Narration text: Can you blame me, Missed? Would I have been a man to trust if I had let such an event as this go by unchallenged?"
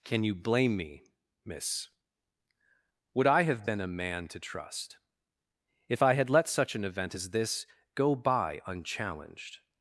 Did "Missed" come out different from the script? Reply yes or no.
yes